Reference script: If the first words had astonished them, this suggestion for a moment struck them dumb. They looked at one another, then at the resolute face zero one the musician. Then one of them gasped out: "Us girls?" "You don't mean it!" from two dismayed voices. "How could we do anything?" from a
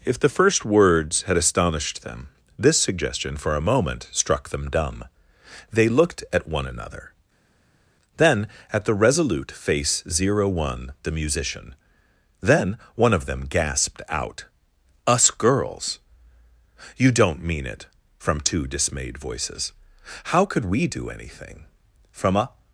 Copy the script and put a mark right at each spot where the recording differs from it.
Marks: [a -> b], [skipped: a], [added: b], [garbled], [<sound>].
If the first words had astonished them, this suggestion for a moment struck them dumb. They looked at one another, then at the resolute face zero one the musician. Then one of them gasped out: "Us girls?" "You don't mean it!" from two dismayed voices. "How could we do anything?" from a